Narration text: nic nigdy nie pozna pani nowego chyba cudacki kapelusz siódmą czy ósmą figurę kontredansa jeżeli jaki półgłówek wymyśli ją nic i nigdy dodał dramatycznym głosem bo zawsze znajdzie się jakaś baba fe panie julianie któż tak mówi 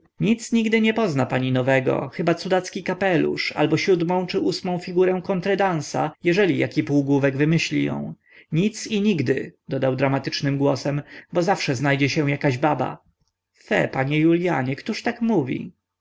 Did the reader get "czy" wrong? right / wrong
right